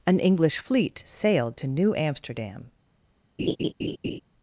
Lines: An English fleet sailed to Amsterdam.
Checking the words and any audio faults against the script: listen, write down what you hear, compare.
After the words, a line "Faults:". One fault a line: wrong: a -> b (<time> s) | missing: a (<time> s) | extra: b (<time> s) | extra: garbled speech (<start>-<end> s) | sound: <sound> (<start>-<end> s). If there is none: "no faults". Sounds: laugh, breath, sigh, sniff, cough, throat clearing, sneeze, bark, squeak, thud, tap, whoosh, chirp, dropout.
An English fleet sailed to New Amsterdam.
Faults:
extra: New (1.7 s)
sound: laugh (3.4-4.2 s)